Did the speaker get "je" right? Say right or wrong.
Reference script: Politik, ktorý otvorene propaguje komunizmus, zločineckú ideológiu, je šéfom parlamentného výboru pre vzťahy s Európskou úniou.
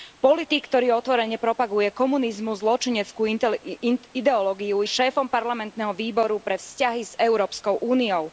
wrong